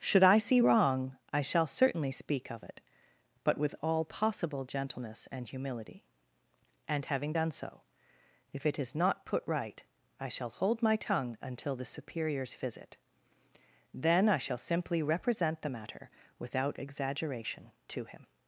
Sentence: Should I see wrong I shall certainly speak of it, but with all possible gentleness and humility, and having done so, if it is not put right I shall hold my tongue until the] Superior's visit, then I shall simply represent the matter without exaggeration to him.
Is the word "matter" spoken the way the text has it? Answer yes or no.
yes